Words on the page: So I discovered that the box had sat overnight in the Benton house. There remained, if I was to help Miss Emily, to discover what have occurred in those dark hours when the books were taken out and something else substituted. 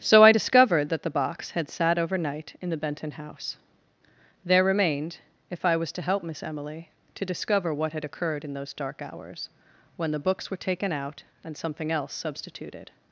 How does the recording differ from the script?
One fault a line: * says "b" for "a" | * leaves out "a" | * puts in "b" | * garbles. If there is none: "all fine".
* says "had" for "have"